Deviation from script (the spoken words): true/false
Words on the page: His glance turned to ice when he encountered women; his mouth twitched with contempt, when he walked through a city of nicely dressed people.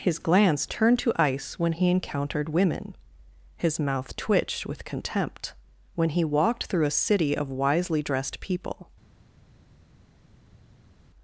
true